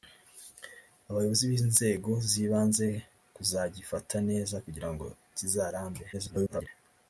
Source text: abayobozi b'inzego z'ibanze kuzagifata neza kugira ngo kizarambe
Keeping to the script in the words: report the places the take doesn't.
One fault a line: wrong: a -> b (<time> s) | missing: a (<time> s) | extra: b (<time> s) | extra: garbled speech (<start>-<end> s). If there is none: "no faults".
extra: garbled speech (6.1-6.7 s)